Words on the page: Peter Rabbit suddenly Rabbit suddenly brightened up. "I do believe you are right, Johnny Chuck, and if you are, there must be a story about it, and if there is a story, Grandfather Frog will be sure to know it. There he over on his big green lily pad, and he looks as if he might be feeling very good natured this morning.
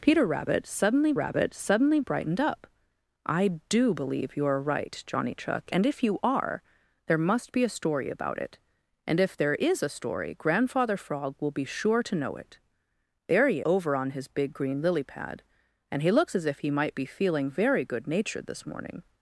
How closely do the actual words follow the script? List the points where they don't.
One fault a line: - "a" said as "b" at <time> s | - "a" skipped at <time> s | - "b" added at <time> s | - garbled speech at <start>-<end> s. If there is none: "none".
none